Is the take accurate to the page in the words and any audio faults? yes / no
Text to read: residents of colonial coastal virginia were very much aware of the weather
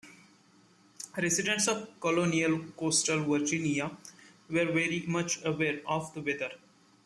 yes